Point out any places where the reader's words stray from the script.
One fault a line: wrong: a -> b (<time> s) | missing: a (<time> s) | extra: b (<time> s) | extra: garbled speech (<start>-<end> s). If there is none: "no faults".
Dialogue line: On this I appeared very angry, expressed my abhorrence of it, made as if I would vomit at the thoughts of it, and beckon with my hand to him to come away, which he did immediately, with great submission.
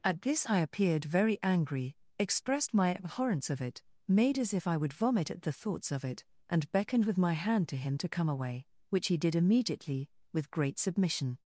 wrong: On -> At (0.0 s)
wrong: beckon -> beckoned (6.7 s)